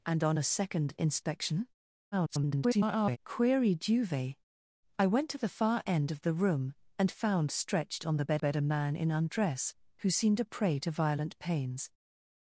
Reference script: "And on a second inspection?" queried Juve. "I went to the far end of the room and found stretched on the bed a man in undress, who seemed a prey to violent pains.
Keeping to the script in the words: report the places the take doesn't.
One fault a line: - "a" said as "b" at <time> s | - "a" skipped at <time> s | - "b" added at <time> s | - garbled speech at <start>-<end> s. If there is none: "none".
- garbled speech at 2.1-3.2 s
- "bed" added at 8.4 s